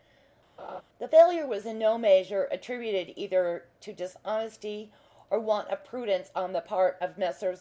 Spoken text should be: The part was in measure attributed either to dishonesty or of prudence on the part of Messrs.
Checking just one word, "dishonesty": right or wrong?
right